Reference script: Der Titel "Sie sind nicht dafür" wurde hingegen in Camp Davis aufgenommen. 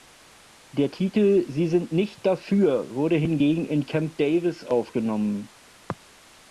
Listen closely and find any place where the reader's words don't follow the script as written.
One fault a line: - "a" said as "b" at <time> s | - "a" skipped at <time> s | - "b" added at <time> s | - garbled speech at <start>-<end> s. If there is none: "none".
none